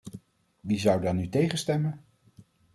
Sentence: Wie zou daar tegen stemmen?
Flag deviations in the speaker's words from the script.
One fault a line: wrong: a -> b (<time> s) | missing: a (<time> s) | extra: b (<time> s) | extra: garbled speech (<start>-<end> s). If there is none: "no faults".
extra: nu (1.1 s)